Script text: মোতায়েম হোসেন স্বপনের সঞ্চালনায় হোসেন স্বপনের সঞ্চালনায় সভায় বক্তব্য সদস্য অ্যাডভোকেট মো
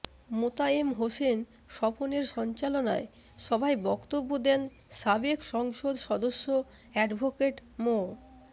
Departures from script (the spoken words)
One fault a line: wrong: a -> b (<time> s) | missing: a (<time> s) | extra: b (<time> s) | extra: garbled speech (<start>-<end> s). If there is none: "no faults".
wrong: হোসেন স্বপনের সঞ্চালনায় সভায় বক্তব্য -> সভায় বক্তব্য দেন সাবেক সংসদ (3.4 s)